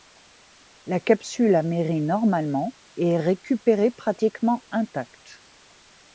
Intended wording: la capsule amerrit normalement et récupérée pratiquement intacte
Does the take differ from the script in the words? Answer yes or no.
yes